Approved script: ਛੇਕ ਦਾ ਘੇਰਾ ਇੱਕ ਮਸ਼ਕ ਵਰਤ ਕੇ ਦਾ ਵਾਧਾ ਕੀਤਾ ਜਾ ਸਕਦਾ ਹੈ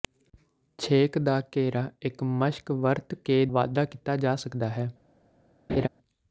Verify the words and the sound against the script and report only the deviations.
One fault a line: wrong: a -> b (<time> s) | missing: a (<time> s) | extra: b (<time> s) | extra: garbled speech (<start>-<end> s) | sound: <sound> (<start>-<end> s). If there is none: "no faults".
missing: ਦਾ (3.5 s)
sound: laugh (5.7-5.9 s)